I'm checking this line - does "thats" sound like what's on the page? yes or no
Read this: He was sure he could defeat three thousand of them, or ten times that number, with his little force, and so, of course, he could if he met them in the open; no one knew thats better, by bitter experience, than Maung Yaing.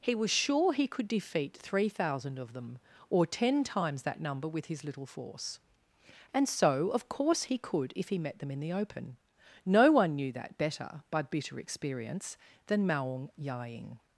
no